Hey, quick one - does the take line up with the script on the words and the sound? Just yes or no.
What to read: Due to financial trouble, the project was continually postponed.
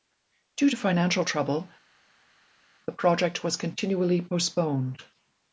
yes